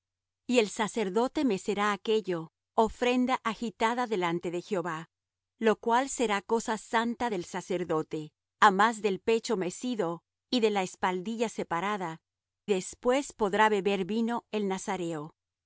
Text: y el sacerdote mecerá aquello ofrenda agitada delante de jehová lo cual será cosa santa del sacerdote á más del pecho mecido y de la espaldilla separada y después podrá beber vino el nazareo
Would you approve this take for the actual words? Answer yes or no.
no